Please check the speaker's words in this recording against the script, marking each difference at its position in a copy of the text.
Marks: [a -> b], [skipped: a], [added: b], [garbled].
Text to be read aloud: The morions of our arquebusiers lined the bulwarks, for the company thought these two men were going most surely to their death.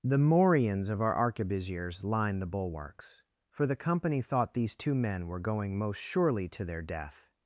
The morions of our arquebusiers lined the bulwarks, for the company thought these two men were going most surely to their death.